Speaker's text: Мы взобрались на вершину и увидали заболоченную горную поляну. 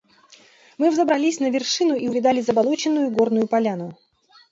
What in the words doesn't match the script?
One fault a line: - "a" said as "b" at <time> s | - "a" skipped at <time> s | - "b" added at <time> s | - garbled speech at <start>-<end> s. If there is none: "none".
none